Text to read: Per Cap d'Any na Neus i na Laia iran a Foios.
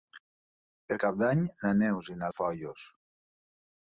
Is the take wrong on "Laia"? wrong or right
wrong